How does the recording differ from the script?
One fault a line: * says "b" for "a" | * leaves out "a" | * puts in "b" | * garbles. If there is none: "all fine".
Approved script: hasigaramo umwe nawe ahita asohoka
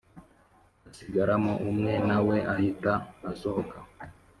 all fine